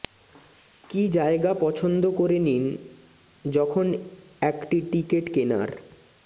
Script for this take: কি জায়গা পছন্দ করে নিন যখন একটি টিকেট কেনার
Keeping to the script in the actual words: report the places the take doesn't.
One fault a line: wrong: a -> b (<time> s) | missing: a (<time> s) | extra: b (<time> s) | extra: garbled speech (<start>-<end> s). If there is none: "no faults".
no faults